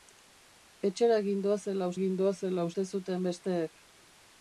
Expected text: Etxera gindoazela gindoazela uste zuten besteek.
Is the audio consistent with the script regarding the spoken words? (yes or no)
yes